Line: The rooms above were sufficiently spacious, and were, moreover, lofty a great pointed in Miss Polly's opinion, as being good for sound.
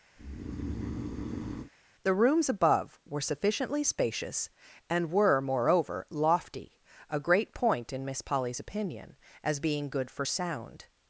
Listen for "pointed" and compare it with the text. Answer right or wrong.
wrong